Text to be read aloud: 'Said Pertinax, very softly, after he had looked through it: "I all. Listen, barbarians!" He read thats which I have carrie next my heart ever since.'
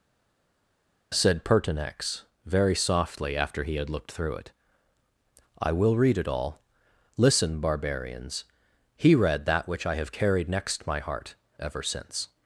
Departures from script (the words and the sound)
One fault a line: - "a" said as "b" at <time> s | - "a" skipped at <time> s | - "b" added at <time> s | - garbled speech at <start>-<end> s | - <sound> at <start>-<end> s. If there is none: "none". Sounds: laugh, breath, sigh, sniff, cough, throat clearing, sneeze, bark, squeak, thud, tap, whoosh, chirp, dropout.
- "will read it" added at 5.7 s
- "thats" said as "that" at 9.5 s
- "carrie" said as "carried" at 10.1 s